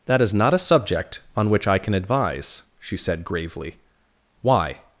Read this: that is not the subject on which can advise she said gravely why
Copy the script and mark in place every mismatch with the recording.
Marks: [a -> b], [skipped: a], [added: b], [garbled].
that is not [the -> a] subject on which [added: i] can advise she said gravely why